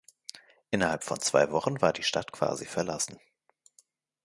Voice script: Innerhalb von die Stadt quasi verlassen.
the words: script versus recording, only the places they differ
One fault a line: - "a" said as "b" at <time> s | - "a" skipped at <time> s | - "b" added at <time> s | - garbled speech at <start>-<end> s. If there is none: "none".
- "zwei Wochen war" added at 1.2 s